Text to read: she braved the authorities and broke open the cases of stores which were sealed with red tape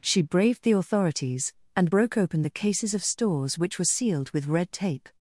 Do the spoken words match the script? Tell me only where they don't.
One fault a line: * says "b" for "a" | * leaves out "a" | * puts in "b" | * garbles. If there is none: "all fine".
all fine